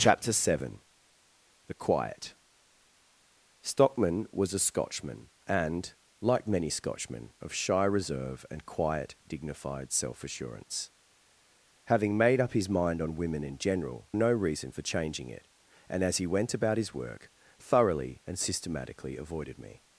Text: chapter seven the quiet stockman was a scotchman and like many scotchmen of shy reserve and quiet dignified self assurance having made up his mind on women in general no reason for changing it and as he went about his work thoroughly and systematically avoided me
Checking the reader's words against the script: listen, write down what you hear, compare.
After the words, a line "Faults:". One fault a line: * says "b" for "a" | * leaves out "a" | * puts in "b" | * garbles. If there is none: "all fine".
chapter seven the quiet stockman was a scotchman and like many scotchmen of shy reserve and quiet dignified self assurance having made up his mind on women in general no reason for changing it and as he went about his work thoroughly and systematically avoided me
Faults:
all fine